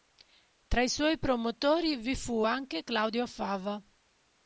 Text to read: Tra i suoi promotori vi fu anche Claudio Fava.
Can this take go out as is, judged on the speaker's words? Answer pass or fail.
pass